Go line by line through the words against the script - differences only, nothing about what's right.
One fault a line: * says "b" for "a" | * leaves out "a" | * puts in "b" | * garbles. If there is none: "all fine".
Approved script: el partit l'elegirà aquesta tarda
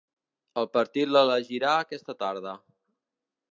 all fine